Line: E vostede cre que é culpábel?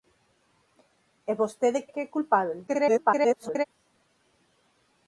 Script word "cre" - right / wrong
wrong